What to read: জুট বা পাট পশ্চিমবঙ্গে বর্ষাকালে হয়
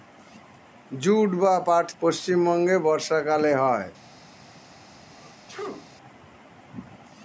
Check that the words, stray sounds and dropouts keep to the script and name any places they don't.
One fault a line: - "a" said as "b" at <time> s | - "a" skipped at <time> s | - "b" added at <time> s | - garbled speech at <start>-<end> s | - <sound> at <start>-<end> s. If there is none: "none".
- sneeze at 5.1-5.9 s